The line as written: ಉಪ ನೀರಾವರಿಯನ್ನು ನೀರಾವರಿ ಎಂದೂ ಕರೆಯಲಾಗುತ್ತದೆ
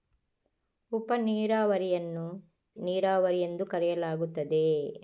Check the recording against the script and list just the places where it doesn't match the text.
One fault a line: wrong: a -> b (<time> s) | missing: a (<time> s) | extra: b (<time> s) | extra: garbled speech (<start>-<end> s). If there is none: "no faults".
no faults